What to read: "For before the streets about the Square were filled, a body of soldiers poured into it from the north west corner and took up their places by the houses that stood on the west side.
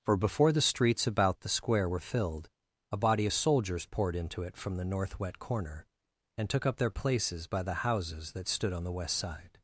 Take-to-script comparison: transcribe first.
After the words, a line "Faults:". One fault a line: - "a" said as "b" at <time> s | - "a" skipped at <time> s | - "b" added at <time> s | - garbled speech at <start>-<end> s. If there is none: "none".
"For before the streets about the Square were filled, a body of soldiers poured into it from the north wet corner and took up their places by the houses that stood on the west side.
Faults:
- "west" said as "wet" at 5.2 s